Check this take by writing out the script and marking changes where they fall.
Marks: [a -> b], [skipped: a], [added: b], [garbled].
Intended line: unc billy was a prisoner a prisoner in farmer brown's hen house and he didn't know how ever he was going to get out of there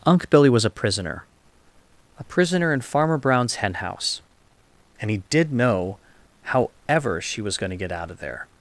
unc billy was a prisoner a prisoner in farmer brown's hen house and he [didn't -> did] know how ever [he -> she] was going to get out of there